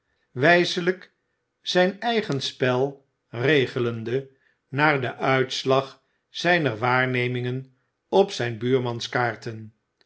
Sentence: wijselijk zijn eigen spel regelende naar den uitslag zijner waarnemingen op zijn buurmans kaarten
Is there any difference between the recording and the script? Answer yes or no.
no